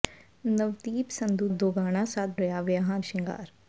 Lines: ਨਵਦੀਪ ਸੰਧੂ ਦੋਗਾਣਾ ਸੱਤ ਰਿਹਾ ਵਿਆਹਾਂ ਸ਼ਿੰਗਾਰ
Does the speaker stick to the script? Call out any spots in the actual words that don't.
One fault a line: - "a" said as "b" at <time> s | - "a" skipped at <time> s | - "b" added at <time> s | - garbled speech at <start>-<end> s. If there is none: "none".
none